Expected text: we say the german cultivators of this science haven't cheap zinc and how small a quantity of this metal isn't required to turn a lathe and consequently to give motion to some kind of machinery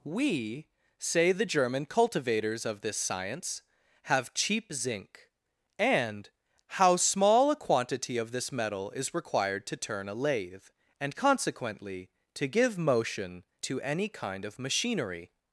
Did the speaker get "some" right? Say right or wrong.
wrong